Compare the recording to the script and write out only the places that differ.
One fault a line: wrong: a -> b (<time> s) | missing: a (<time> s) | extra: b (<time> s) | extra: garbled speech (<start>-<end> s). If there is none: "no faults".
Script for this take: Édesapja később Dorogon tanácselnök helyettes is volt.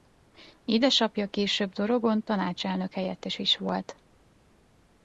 no faults